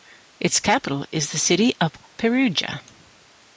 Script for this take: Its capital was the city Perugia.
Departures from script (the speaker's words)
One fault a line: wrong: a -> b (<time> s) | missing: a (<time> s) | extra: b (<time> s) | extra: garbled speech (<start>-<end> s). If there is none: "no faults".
wrong: was -> is (1.1 s)
extra: of (1.8 s)